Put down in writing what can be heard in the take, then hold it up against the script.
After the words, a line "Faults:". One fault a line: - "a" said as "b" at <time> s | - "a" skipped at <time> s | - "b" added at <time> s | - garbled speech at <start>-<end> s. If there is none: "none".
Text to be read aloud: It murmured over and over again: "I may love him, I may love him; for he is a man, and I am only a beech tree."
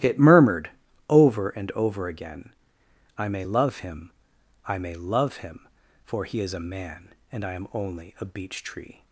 It murmured over and over again: "I may love him, I may love him; for he is a man, and I am only a beech tree."
Faults:
none